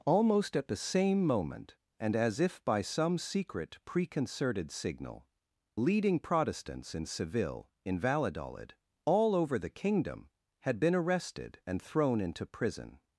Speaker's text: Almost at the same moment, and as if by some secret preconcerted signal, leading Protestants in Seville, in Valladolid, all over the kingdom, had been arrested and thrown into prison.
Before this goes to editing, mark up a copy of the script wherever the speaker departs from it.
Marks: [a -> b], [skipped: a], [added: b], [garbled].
Almost at the same moment, and as if by some secret preconcerted signal, leading Protestants in Seville, in Valladolid, all over the kingdom, had been arrested and thrown into prison.